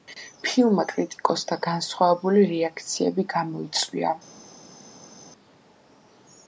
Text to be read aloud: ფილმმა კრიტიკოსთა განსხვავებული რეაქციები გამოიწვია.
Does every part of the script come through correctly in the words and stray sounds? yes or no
yes